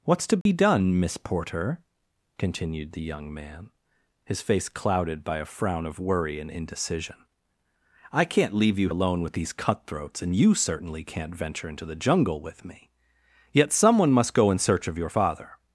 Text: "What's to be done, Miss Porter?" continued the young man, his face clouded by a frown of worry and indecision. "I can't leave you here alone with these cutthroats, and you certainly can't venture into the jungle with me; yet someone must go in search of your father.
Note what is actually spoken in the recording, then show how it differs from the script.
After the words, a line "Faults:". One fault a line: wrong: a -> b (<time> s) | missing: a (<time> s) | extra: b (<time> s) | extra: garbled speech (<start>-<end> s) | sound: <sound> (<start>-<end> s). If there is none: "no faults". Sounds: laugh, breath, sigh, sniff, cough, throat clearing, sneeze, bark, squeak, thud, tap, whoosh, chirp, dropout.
"What's to be done, Miss Porter?" continued the young man, his face clouded by a frown of worry and indecision. "I can't leave you alone with these cutthroats, and you certainly can't venture into the jungle with me; yet someone must go in search of your father.
Faults:
sound: dropout (0.4-0.5 s)
missing: here (8.9 s)